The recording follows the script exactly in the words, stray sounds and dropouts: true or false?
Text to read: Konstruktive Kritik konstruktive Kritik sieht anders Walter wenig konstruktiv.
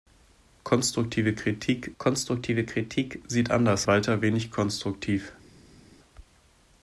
true